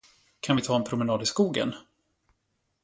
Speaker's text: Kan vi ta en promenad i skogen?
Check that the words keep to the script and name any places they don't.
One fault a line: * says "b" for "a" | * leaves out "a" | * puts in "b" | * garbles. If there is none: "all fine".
all fine